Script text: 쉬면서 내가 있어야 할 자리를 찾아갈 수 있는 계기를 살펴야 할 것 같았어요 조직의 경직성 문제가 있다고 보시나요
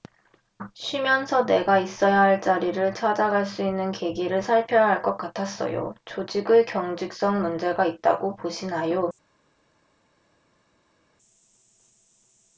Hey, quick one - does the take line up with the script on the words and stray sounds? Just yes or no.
yes